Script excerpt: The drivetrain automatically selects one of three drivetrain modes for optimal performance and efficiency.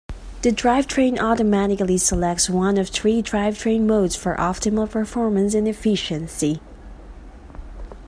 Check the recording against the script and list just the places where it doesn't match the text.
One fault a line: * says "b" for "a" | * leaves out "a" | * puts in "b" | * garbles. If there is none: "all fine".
all fine